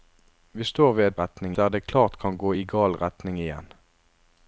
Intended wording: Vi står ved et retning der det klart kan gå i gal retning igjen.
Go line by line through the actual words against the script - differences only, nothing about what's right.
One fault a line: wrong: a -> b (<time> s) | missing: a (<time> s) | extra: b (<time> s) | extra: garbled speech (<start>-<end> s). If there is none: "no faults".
no faults